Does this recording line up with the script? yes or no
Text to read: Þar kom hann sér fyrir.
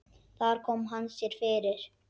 yes